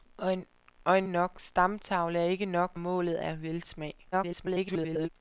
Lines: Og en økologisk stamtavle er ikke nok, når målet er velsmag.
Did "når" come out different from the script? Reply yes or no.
yes